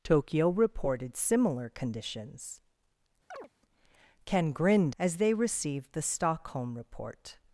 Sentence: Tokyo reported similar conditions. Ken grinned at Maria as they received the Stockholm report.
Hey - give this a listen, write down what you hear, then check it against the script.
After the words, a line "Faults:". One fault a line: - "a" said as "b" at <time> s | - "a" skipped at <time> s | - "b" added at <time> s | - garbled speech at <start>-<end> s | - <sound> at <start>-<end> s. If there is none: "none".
Tokyo reported similar conditions. Ken grinned as they received the Stockholm report.
Faults:
- chirp at 3.3-3.5 s
- "at Maria" skipped at 5.0 s